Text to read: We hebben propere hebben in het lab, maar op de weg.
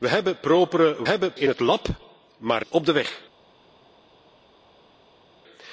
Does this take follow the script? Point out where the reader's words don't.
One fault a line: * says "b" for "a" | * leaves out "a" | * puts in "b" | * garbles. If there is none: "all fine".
all fine